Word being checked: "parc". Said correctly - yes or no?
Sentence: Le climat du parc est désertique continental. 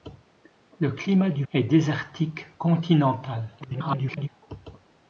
no